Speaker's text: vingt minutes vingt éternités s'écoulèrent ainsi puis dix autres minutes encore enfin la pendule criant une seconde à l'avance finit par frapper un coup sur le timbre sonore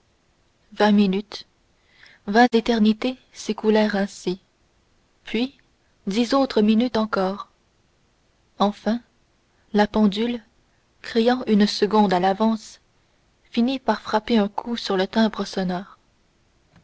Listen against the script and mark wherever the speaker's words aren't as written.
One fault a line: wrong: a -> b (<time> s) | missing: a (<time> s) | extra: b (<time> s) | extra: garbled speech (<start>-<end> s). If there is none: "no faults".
no faults